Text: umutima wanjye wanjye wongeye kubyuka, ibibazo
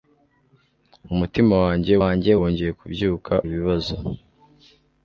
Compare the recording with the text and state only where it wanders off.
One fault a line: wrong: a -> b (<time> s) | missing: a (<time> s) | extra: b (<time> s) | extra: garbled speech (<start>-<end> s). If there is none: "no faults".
no faults